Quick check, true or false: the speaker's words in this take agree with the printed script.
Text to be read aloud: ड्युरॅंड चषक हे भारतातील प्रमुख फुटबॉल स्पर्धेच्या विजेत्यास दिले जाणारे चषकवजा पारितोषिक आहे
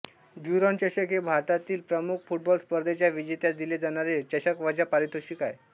true